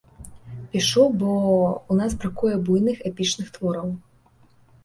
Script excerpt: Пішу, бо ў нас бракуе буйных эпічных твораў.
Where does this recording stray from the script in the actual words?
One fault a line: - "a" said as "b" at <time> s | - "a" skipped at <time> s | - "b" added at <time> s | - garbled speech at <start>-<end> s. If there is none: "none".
none